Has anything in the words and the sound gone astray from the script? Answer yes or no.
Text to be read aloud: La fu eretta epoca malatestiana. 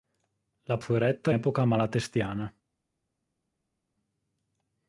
no